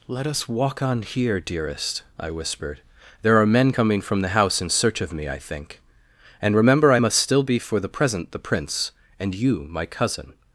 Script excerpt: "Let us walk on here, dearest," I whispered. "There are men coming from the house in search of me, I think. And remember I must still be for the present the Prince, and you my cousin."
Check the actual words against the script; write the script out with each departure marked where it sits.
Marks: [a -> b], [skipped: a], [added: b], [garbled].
"Let us walk on here, dearest," I whispered. "There are men coming from the house in search of me, I think. And remember I must still be for the present the Prince, and you my cousin."